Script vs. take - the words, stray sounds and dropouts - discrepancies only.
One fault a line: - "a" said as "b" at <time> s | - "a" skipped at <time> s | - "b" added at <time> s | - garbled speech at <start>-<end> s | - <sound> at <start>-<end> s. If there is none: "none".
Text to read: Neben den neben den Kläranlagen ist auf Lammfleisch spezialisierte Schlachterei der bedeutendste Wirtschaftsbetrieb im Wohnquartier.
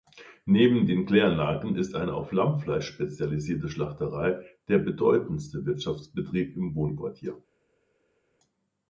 - "neben den" skipped at 1.1 s
- "eine" added at 1.9 s